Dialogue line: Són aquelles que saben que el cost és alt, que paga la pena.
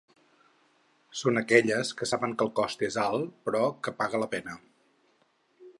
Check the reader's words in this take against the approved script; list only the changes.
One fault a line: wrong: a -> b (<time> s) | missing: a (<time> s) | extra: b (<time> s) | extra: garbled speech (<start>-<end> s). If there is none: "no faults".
extra: però (3.5 s)